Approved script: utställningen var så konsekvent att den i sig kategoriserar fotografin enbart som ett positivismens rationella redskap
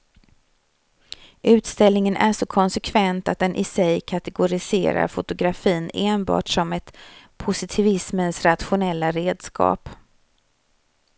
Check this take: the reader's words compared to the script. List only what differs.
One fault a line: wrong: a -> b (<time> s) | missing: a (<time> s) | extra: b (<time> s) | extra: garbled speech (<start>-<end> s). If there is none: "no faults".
wrong: var -> är (2.1 s)